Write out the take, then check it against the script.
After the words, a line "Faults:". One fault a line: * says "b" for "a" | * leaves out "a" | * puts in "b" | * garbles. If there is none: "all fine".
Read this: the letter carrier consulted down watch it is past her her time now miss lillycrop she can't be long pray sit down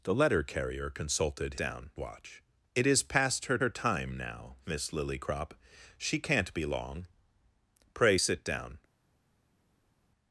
the letter carrier consulted down watch it is past her her time now miss lillycrop she can't be long pray sit down
Faults:
all fine